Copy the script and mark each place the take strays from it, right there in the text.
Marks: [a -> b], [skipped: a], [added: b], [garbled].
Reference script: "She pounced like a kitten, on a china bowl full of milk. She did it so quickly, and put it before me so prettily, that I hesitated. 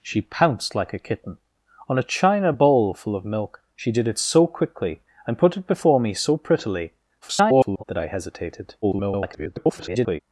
"She pounced like a kitten, on a china bowl full of milk. She did it so quickly, and put it before me so prettily, [garbled] that I hesitated. [garbled]